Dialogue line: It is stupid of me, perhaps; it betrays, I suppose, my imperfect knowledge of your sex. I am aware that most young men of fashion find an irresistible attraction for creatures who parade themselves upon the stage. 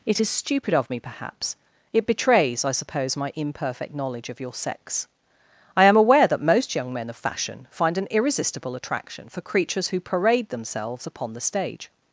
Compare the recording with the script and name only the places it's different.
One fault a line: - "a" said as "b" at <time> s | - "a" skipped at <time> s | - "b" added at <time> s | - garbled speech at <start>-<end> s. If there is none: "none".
none